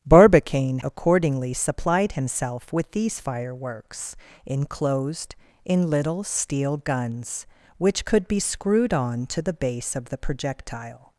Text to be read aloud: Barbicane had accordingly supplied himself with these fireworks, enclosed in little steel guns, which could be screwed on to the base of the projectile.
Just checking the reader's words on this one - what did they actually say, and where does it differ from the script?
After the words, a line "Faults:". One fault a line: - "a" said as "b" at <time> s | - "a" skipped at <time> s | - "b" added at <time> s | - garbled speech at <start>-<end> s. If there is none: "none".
Barbicane accordingly supplied himself with these fireworks, enclosed in little steel guns, which could be screwed on to the base of the projectile.
Faults:
- "had" skipped at 0.8 s